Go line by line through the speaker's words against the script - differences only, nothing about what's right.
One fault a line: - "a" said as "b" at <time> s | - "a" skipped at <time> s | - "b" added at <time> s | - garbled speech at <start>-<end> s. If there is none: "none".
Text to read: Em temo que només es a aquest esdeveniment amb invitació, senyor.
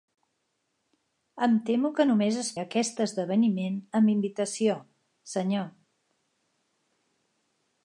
none